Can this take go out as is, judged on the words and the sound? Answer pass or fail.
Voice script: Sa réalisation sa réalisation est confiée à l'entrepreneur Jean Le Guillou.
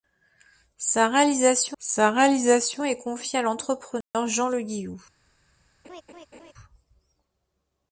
fail